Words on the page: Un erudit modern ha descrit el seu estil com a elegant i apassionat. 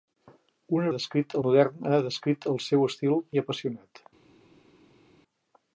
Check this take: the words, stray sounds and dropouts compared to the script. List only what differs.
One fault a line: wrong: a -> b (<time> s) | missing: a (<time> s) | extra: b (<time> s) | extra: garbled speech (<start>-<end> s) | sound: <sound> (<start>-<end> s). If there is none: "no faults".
wrong: erudit -> descrit (1.0 s)
missing: com a elegant (3.2 s)